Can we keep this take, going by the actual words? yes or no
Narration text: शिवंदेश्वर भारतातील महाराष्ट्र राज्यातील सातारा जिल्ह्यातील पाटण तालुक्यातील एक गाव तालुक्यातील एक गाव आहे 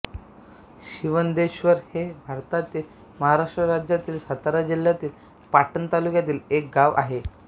no